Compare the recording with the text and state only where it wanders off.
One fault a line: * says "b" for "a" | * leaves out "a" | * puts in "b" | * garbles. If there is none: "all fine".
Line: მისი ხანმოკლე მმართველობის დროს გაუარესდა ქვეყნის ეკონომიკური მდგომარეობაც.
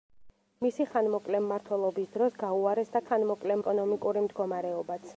* says "ხანმოკლე" for "ქვეყნის"